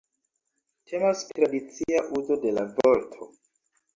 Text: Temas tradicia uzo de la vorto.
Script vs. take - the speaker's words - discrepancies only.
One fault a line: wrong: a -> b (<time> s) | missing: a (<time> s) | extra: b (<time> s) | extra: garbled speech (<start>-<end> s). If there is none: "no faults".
no faults